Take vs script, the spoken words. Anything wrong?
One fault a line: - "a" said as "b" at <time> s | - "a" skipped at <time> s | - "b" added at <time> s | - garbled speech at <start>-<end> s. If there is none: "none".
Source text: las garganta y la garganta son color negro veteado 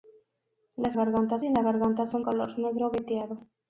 none